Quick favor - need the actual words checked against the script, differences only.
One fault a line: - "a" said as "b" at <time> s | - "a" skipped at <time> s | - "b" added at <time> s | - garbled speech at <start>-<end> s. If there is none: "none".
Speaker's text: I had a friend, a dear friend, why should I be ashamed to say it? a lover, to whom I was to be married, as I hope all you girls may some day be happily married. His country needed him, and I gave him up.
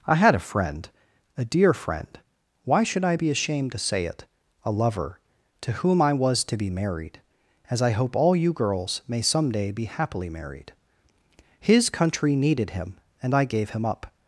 none